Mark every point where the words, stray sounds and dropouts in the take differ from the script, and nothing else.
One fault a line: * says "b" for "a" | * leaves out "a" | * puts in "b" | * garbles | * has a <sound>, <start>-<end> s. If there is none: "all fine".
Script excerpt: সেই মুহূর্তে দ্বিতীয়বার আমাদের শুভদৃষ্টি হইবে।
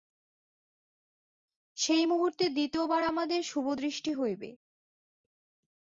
all fine